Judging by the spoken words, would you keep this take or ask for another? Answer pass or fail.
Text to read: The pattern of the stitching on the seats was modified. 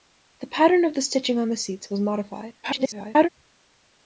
fail